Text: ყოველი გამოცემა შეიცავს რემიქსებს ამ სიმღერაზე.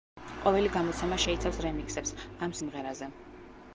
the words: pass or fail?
pass